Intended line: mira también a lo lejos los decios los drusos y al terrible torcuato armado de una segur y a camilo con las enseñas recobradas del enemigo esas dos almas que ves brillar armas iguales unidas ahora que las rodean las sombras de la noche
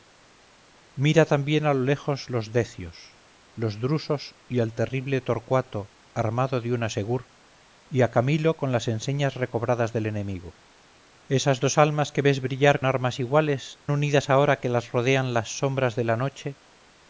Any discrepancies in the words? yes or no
no